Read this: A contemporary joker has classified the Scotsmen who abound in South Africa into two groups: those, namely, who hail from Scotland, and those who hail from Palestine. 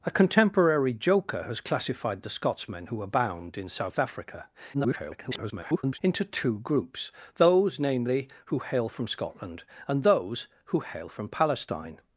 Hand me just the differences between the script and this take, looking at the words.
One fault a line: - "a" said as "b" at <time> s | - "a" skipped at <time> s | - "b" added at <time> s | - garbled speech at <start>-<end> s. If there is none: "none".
- garbled speech at 4.7-6.0 s